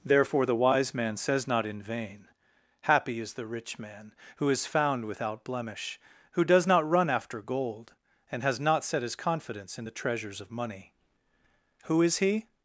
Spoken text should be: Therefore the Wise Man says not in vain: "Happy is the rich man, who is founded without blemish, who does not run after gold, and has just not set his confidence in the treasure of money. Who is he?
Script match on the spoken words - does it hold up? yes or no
no